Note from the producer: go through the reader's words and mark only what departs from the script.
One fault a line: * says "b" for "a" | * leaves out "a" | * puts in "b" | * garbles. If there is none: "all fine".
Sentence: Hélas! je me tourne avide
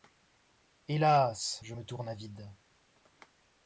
all fine